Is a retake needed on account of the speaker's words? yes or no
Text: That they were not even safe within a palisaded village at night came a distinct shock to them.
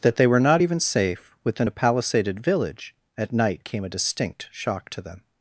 no